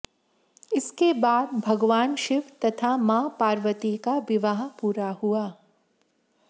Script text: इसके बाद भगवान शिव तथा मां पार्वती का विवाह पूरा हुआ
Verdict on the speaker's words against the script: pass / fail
pass